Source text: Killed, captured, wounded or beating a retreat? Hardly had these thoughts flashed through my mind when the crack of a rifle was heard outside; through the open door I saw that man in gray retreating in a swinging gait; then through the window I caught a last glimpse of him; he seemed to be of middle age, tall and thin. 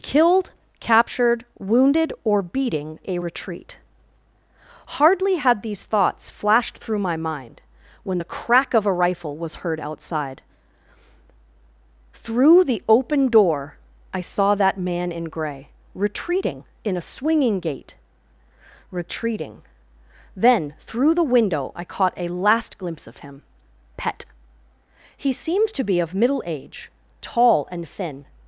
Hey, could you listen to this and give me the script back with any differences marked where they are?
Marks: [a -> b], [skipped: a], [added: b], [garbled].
Killed, captured, wounded or beating a retreat? Hardly had these thoughts flashed through my mind when the crack of a rifle was heard outside; through the open door I saw that man in gray retreating in a swinging gait; [added: retreating] then through the window I caught a last glimpse of him; [added: pet] he seemed to be of middle age, tall and thin.